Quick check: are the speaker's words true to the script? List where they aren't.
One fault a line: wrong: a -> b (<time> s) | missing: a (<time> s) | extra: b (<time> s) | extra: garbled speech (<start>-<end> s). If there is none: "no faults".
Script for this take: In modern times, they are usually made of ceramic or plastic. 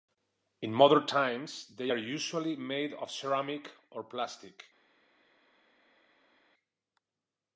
no faults